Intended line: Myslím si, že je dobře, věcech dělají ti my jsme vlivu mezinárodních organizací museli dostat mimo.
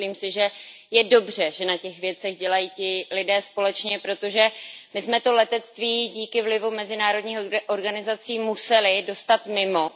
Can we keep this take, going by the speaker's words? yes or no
no